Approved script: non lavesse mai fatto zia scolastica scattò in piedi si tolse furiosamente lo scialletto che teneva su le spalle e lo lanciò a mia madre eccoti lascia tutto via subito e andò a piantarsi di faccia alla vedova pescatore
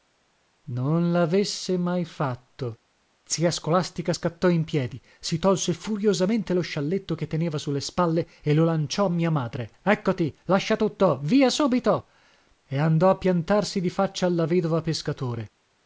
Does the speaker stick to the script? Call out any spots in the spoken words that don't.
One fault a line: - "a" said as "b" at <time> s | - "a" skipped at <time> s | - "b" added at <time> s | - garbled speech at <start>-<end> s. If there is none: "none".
none